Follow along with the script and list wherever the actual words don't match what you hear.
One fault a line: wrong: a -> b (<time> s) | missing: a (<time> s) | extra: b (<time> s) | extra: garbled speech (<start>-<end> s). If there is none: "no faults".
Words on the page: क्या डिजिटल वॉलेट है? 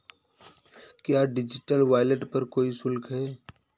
extra: पर कोई शुल्क (2.2 s)